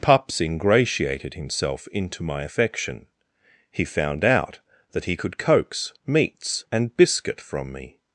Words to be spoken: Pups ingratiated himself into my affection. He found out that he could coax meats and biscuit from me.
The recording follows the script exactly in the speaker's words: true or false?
true